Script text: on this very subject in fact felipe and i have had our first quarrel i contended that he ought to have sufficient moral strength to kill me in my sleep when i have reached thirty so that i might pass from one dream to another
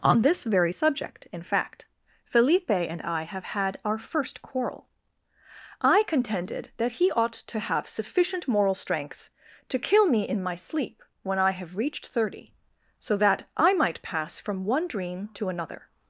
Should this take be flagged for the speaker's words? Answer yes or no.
no